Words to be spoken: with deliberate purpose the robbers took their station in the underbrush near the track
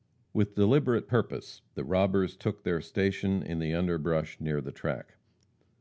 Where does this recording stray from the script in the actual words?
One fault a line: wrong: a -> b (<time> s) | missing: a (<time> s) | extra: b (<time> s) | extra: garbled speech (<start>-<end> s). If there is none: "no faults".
no faults